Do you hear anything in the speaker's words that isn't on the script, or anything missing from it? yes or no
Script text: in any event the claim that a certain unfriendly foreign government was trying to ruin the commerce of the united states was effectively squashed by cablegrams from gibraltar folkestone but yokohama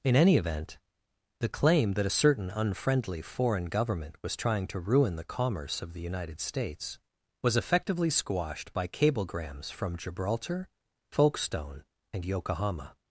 yes